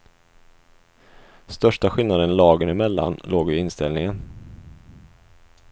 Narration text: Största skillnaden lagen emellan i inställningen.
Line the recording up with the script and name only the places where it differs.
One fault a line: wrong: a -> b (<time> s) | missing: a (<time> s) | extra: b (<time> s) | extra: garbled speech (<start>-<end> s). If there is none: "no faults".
extra: låg (3.2 s)